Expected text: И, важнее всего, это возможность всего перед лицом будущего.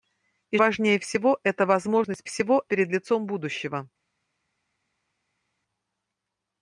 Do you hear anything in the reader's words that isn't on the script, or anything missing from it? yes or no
no